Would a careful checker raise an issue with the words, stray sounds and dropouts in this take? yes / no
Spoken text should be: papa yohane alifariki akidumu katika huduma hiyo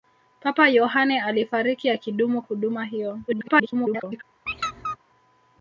yes